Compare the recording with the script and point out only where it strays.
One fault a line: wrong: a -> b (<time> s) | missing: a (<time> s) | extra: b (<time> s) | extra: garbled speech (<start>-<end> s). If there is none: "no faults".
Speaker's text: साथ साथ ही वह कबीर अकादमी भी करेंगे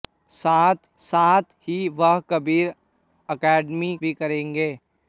no faults